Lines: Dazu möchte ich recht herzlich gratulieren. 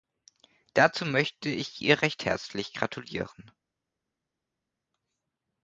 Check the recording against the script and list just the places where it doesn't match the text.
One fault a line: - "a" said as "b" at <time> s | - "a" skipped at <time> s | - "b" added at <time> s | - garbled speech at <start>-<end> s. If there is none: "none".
- "ihr" added at 1.8 s